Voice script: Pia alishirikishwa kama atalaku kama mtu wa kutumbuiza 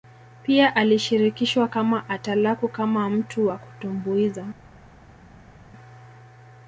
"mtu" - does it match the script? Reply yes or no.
yes